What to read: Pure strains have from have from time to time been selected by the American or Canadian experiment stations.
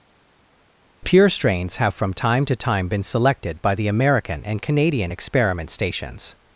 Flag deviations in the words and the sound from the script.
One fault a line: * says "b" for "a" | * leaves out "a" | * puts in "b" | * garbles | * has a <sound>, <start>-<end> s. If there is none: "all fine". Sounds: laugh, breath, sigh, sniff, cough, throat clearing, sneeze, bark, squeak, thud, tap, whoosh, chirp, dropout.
* leaves out "have from"
* says "and" for "or"